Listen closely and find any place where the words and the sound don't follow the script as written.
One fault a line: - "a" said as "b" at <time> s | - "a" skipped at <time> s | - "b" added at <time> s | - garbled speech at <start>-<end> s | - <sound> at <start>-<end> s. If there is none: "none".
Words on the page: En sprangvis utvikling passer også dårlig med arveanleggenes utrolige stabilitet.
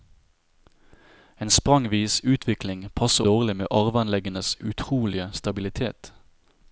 - "også" skipped at 3.2 s